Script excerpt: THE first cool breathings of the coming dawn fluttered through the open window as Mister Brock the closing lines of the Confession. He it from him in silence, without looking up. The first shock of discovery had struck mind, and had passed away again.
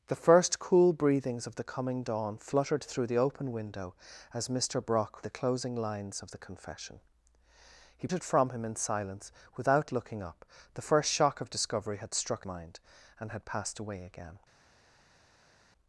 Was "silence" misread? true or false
false